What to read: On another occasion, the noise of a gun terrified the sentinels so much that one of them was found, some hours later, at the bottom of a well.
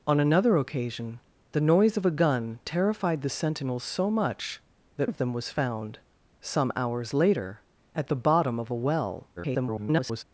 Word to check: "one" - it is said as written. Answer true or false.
false